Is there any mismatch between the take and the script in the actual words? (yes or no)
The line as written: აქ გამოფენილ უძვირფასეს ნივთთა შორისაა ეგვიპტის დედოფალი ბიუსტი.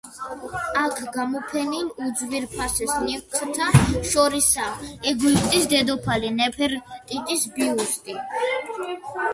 yes